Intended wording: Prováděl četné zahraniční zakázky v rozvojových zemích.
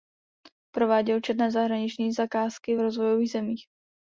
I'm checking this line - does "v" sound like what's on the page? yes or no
yes